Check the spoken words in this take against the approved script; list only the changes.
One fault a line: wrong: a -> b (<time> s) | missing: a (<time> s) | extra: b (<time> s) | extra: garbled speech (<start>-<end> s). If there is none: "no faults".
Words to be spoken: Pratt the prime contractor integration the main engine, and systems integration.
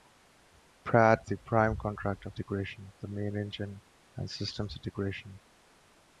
no faults